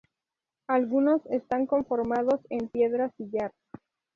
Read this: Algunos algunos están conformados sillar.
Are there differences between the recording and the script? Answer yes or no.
yes